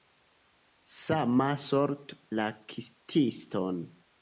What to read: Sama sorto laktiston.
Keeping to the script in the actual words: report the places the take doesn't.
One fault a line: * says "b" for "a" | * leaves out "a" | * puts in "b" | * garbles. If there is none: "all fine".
all fine